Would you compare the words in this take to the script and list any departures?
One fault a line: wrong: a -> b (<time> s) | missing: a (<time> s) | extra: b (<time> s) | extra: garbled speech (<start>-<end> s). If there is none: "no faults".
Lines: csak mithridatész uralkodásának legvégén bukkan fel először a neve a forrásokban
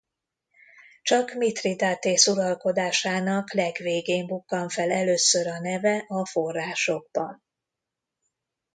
no faults